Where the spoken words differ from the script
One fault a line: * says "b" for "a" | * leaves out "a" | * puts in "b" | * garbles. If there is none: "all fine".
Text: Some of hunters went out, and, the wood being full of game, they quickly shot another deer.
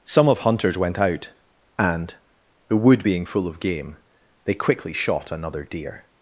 all fine